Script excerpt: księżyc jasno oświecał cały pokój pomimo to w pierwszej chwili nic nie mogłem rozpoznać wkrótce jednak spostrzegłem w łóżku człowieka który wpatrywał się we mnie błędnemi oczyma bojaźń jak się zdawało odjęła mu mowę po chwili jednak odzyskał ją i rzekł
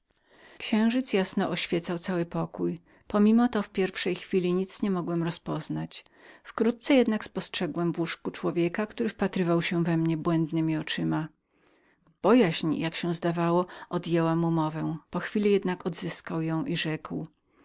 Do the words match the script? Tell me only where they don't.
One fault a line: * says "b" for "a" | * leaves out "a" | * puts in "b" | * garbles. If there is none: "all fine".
all fine